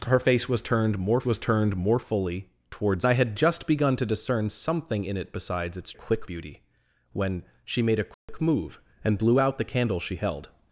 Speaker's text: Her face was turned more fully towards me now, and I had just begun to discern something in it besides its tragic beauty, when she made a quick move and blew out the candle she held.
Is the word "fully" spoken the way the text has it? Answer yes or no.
no